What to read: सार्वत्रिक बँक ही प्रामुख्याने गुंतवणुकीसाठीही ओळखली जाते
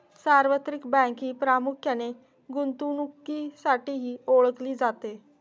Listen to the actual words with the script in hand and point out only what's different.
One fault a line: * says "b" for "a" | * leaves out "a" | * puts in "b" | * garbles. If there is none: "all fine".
all fine